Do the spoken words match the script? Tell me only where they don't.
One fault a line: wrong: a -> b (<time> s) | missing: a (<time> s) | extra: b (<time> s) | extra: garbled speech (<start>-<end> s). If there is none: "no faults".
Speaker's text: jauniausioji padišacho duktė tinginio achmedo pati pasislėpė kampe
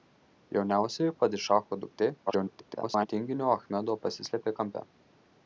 extra: garbled speech (2.3-3.1 s)
missing: pati (4.0 s)